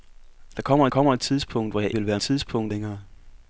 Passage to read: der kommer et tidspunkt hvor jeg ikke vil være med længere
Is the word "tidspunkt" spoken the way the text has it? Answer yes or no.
yes